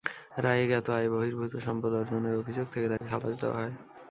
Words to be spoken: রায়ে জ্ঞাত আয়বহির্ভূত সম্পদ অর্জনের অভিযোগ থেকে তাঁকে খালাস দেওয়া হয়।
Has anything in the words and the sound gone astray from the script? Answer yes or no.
yes